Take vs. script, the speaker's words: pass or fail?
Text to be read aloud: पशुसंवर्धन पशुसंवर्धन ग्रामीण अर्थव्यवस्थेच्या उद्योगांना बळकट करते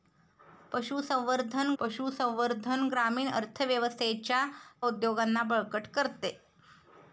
pass